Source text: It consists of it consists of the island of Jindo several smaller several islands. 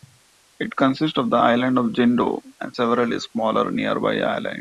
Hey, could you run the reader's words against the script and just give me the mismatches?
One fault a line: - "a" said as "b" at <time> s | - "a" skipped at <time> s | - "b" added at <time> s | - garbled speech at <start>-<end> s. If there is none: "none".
- "it consists of" skipped at 1.3 s
- "and" added at 2.6 s
- "several" said as "nearby" at 3.7 s